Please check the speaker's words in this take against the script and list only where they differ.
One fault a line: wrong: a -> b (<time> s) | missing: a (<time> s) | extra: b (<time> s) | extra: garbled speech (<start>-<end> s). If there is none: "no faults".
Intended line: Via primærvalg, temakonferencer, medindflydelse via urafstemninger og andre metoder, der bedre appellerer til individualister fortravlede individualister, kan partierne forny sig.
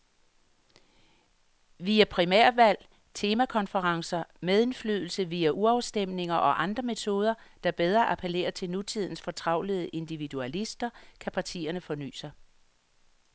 wrong: individualister -> nutidens (8.7 s)